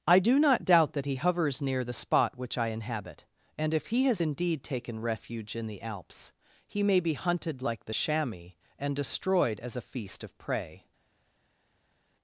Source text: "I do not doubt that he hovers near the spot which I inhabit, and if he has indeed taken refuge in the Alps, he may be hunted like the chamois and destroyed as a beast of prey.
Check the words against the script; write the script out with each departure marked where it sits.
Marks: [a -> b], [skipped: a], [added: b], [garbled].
"I do not doubt that he hovers near the spot which I inhabit, and if he has indeed taken refuge in the Alps, he may be hunted like the chamois and destroyed as a [beast -> feast] of prey.